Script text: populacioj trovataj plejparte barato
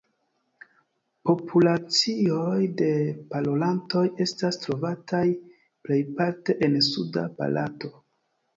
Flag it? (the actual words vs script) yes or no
yes